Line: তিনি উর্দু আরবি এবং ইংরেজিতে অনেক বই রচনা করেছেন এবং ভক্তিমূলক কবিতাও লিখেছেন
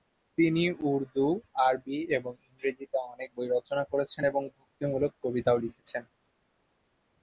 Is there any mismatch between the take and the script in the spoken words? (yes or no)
no